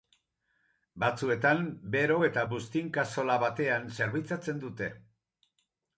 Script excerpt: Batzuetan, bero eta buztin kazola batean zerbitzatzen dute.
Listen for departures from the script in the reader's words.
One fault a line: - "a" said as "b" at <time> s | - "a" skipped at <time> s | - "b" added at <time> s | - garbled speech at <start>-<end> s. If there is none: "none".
none